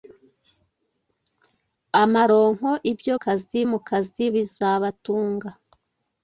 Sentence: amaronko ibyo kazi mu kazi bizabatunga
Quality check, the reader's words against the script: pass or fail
pass